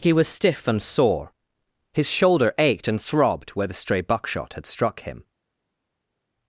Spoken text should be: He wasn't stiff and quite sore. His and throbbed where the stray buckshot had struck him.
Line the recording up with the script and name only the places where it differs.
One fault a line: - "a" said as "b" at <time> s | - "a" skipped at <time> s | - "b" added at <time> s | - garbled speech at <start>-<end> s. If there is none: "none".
- "wasn't" said as "was" at 0.1 s
- "quite" skipped at 0.8 s
- "shoulder ached" added at 2.1 s